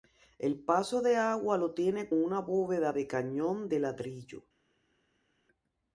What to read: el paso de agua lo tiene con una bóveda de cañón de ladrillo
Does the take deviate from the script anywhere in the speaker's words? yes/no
yes